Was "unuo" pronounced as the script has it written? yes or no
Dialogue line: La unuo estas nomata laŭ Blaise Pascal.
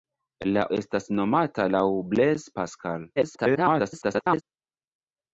no